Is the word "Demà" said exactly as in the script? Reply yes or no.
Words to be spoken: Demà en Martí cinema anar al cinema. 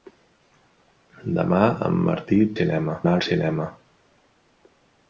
yes